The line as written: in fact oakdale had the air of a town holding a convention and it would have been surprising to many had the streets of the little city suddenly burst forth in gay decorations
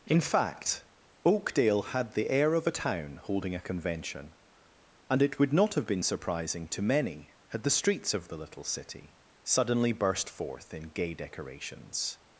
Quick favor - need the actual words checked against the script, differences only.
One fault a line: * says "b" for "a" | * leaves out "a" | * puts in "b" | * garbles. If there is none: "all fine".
* puts in "not"